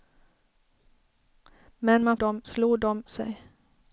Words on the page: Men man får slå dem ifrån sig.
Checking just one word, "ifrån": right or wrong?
wrong